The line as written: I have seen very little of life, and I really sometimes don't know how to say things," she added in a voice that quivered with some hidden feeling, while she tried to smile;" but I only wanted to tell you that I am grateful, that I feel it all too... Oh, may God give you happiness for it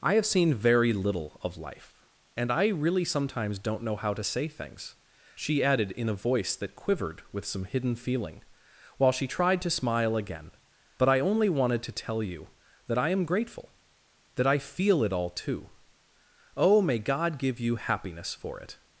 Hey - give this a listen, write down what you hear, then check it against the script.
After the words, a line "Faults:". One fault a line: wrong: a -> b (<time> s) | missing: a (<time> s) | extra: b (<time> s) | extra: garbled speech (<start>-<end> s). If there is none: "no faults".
I have seen very little of life, and I really sometimes don't know how to say things," she added in a voice that quivered with some hidden feeling, while she tried to smile;" again but I only wanted to tell you that I am grateful, that I feel it all too... Oh, may God give you happiness for it
Faults:
extra: again (10.2 s)